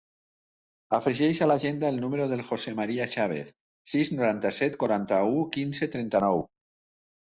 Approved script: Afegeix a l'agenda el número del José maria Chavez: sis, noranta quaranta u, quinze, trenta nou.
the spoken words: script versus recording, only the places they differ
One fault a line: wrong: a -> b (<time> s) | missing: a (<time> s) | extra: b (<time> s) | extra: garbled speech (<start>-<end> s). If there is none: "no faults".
extra: set (4.6 s)